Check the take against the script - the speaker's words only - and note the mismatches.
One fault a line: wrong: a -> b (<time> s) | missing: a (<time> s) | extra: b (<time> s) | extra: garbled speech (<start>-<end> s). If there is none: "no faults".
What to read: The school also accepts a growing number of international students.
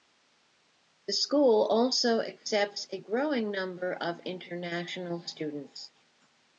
no faults